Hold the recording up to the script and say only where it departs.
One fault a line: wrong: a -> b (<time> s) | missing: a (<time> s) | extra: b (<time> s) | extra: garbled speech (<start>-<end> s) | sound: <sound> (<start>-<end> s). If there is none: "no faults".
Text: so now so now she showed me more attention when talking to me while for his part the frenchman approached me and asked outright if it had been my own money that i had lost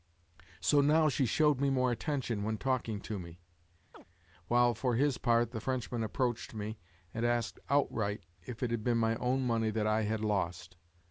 missing: so now (1.1 s)
sound: chirp (3.9-4.0 s)